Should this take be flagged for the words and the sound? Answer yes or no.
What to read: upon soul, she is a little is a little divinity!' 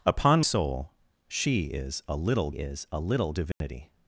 yes